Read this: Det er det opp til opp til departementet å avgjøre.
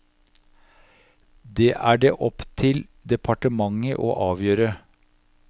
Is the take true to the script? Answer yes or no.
no